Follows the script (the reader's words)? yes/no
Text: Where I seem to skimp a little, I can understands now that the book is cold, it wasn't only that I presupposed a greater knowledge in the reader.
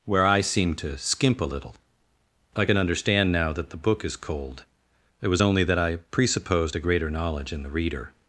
no